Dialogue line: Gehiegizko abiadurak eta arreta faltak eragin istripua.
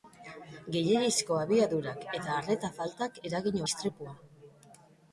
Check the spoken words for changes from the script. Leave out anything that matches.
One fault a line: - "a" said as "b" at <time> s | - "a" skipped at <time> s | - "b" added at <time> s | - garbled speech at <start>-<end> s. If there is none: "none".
none